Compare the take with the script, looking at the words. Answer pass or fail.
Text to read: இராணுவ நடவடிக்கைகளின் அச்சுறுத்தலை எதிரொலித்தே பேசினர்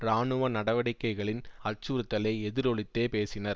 pass